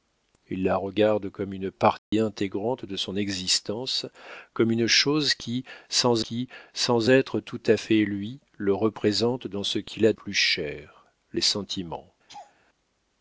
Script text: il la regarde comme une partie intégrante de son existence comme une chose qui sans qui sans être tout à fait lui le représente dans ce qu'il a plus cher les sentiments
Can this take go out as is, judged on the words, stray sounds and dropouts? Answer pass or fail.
fail